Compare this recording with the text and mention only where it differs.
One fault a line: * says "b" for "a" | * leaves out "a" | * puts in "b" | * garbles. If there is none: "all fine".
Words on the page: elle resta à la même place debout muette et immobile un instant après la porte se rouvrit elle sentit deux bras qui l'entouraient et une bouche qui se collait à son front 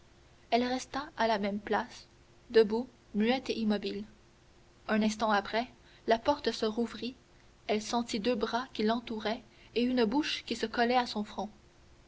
all fine